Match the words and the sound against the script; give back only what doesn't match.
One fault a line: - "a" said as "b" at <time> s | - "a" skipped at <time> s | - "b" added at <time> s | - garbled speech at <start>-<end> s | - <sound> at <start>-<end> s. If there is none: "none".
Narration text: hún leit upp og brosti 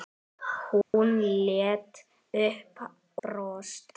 - dropout at 0.8-0.9 s
- "og" skipped at 2.8 s